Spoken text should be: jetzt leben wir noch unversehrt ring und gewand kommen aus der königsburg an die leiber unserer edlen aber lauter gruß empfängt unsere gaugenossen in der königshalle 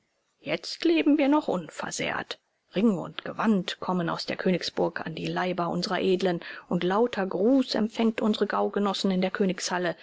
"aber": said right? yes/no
no